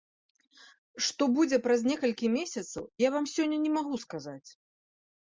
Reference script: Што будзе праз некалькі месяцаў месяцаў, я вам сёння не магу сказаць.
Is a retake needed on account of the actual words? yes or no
yes